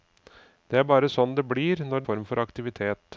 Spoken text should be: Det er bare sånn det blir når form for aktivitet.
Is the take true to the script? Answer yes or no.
yes